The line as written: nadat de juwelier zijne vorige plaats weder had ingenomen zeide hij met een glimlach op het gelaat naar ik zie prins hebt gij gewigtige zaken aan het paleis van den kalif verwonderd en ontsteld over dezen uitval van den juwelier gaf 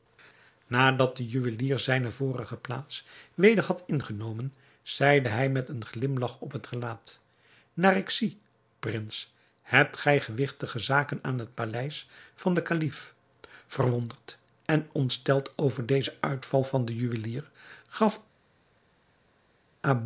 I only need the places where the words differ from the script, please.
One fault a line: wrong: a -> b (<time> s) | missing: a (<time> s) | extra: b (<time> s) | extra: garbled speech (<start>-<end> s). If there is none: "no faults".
no faults